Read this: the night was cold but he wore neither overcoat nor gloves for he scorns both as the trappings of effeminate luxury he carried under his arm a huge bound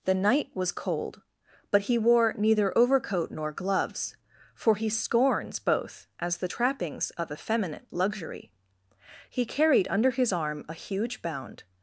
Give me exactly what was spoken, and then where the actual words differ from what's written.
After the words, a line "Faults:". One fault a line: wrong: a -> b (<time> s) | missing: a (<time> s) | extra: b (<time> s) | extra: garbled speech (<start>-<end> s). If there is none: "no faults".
the night was cold but he wore neither overcoat nor gloves for he scorns both as the trappings of effeminate luxury he carried under his arm a huge bound
Faults:
no faults